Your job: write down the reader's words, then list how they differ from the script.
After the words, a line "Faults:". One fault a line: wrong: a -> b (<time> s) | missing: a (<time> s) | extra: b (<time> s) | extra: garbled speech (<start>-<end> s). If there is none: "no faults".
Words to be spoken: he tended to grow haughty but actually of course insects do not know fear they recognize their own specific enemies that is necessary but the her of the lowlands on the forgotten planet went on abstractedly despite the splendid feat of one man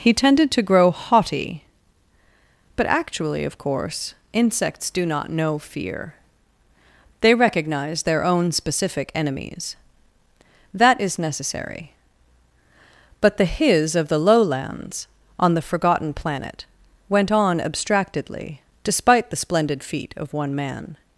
he tended to grow haughty but actually of course insects do not know fear they recognize their own specific enemies that is necessary but the his of the lowlands on the forgotten planet went on abstractedly despite the splendid feat of one man
Faults:
wrong: her -> his (13.4 s)